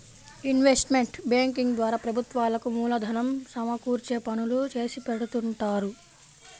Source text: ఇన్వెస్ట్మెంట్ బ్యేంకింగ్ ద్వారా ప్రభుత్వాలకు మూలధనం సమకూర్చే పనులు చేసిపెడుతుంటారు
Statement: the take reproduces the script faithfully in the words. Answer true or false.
true